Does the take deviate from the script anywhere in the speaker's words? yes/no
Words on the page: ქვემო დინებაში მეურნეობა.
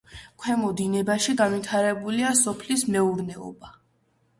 yes